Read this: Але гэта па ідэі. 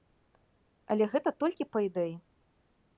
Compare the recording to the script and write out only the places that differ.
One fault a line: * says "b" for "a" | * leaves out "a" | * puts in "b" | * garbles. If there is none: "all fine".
* puts in "толькі"